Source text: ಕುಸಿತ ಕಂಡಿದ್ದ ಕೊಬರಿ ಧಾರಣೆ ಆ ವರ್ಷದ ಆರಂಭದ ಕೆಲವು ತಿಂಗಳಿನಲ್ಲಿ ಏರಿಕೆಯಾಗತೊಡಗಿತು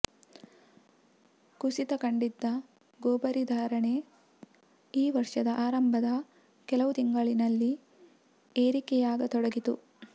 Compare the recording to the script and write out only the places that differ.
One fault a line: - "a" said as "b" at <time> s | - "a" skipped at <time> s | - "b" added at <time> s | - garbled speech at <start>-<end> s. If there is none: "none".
- "ಆ" said as "ಈ" at 4.9 s